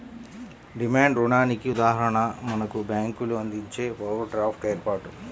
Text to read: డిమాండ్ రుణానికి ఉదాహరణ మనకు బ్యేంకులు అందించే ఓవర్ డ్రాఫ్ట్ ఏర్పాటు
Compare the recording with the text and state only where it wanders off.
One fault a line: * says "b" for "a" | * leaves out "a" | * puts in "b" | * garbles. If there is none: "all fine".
all fine